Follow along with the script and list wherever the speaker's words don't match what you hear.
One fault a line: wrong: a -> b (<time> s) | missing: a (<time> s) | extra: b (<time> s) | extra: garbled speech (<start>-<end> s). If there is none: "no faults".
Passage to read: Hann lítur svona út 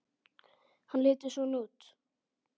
no faults